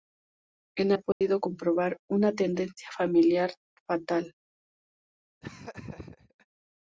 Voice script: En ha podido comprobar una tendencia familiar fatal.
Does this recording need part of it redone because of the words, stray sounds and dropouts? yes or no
yes